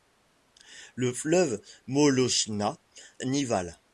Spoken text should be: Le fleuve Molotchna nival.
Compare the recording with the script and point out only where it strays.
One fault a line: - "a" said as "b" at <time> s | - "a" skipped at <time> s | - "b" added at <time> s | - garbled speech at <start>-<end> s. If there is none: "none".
none